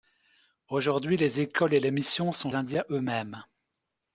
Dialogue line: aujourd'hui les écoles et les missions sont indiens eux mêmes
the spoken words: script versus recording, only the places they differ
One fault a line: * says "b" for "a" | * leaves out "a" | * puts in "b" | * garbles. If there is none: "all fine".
all fine